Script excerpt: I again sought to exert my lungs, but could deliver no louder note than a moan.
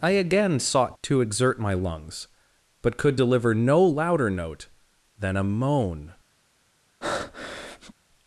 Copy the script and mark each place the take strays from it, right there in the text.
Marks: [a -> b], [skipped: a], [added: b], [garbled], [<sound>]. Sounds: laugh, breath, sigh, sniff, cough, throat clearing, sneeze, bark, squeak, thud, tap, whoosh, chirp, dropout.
I again sought to exert my lungs, but could deliver no louder note than a moan. [breath]